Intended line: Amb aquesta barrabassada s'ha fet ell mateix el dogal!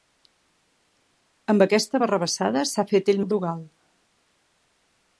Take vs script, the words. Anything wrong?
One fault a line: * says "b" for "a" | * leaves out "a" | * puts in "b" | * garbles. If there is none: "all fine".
* leaves out "mateix"